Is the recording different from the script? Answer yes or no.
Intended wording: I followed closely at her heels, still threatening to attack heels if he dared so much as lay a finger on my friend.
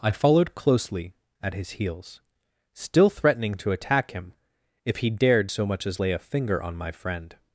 yes